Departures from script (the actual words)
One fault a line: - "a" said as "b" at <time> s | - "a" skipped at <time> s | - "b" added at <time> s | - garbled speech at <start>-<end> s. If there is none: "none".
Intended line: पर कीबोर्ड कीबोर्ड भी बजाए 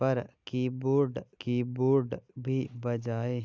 none